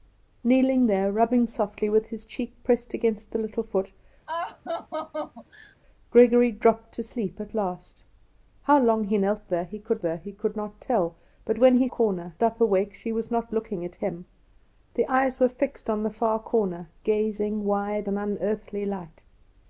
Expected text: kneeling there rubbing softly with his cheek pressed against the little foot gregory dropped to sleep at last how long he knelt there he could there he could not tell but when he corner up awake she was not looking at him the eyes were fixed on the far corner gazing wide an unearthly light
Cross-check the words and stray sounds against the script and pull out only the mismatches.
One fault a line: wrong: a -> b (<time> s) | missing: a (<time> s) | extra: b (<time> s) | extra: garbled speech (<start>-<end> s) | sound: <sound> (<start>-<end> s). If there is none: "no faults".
sound: laugh (4.3-5.8 s)